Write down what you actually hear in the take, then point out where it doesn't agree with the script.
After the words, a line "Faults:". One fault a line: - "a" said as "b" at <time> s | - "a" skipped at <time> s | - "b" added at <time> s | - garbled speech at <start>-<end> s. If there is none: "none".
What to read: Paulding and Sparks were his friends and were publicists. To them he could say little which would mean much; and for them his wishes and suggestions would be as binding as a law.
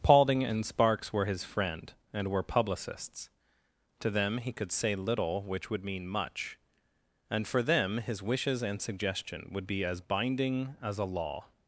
Paulding and Sparks were his friend and were publicists. To them he could say little which would mean much; and for them his wishes and suggestion would be as binding as a law.
Faults:
- "friends" said as "friend" at 1.4 s
- "suggestions" said as "suggestion" at 8.8 s